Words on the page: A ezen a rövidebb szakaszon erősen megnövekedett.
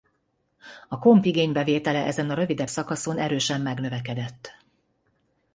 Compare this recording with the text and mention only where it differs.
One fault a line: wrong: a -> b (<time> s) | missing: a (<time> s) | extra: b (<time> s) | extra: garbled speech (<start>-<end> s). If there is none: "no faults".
extra: komp igénybevétele (1.0 s)